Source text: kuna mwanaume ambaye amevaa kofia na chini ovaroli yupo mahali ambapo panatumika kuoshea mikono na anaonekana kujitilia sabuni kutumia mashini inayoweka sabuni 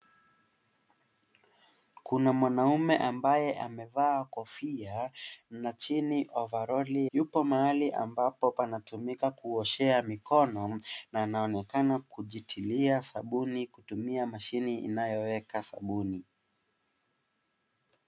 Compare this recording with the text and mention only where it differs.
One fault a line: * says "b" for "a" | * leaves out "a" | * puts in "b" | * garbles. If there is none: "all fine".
all fine